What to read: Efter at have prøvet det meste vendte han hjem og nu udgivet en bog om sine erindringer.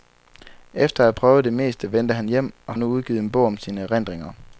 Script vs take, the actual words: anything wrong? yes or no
no